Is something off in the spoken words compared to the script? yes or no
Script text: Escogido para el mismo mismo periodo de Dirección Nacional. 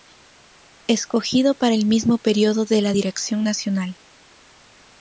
yes